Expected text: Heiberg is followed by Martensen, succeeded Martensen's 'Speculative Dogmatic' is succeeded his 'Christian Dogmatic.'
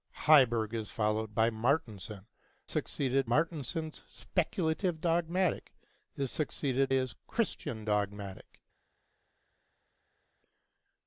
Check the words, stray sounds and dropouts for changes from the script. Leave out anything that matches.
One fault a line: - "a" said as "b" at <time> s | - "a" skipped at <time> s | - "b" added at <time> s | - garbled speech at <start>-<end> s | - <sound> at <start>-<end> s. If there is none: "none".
none